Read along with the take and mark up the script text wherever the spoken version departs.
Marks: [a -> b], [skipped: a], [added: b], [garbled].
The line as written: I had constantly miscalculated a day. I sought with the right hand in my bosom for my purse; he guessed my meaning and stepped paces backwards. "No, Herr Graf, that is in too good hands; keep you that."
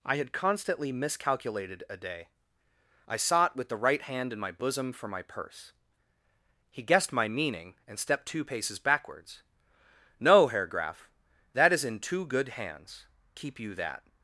I had constantly miscalculated a day. I sought with the right hand in my bosom for my purse; he guessed my meaning and stepped [added: two] paces backwards. "No, Herr Graf, that is in too good hands; keep you that."